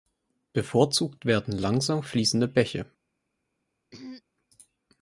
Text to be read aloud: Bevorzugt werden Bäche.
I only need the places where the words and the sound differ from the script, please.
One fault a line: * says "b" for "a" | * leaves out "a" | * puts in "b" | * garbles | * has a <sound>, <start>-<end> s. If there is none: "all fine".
* puts in "langsam fließende"
* has a throat clearing, 3.9-4.2 s